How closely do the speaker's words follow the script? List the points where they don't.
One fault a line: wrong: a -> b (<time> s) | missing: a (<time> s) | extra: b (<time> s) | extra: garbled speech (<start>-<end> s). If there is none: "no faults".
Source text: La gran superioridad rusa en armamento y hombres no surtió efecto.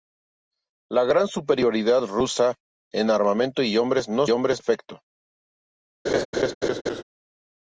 wrong: surtió -> hombres (4.3 s)